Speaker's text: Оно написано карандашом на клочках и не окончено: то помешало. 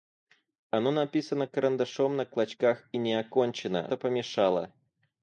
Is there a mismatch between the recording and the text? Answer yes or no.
no